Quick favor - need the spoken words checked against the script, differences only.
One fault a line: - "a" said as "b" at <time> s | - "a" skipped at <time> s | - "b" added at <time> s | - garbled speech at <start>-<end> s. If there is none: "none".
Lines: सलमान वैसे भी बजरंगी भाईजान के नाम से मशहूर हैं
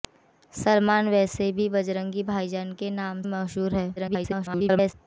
- "से" skipped at 3.2 s
- garbled speech at 4.0-4.9 s